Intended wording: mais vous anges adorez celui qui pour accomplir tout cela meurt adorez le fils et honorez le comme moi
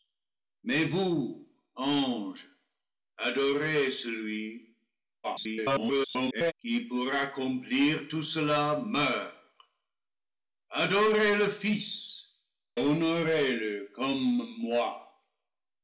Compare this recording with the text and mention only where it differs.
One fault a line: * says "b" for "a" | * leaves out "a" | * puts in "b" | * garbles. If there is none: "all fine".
* garbles
* leaves out "et"